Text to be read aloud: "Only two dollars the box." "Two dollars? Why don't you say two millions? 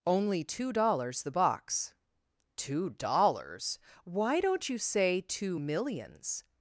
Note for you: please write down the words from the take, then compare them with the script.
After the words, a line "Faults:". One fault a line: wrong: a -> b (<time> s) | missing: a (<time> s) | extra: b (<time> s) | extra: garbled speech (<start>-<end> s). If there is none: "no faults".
"Only two dollars the box." "Two dollars? Why don't you say two millions?
Faults:
no faults